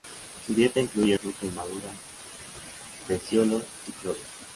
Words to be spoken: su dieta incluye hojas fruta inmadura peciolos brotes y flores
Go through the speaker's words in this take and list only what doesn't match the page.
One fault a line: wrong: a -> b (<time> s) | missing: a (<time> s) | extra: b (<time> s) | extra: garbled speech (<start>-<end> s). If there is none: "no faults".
missing: hojas (1.2 s)
missing: brotes (3.6 s)